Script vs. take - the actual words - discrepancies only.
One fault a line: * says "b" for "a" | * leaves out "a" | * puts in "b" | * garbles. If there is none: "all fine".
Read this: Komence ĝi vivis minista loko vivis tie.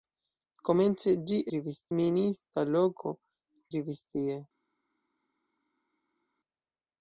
all fine